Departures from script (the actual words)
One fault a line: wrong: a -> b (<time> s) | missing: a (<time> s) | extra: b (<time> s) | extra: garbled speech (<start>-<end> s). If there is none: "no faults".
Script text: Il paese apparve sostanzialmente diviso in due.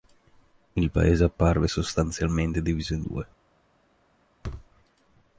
no faults